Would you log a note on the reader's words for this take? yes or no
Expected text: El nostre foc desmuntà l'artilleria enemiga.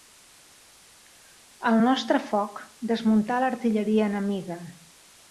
no